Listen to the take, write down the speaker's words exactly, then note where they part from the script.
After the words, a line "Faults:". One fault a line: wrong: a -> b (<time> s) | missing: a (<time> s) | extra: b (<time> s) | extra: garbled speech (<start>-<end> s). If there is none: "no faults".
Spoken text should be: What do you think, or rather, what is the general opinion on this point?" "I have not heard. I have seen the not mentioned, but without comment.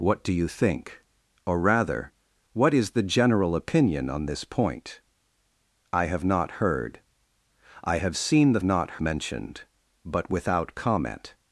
What do you think, or rather, what is the general opinion on this point?" "I have not heard. I have seen the not mentioned, but without comment.
Faults:
no faults